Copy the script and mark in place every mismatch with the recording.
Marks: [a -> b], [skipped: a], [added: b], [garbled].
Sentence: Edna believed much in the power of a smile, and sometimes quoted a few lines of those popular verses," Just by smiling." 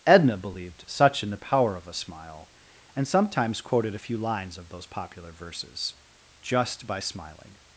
Edna believed [much -> such] in the power of a smile, and sometimes quoted a few lines of those popular verses," Just by smiling."